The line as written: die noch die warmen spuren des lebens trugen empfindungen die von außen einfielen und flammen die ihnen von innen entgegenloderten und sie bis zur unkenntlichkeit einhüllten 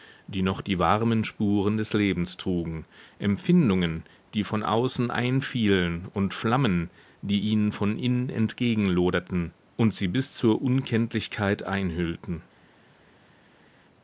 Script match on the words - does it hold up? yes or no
yes